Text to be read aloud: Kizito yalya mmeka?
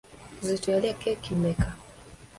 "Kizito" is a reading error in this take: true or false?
false